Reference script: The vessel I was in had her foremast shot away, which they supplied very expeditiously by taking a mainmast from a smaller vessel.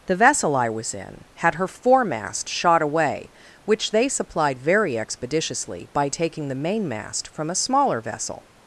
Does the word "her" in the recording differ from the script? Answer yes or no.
no